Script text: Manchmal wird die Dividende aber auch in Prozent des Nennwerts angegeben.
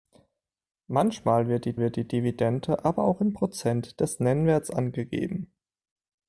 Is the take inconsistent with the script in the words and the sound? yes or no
yes